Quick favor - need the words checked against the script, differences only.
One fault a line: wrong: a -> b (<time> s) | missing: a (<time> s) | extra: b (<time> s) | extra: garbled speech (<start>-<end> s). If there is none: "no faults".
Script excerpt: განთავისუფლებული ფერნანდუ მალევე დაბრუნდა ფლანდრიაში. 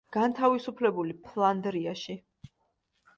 missing: ფერნანდუ მალევე დაბრუნდა (1.1 s)